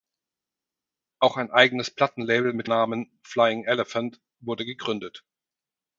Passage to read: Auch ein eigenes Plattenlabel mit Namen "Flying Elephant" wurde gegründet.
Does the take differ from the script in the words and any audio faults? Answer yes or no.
no